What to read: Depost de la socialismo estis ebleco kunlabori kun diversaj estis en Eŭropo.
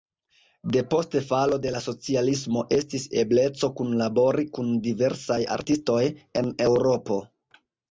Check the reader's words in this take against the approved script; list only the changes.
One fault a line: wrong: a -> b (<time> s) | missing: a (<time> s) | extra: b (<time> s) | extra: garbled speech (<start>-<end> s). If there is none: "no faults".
extra: falo (1.3 s)
wrong: estis -> artistoj (5.6 s)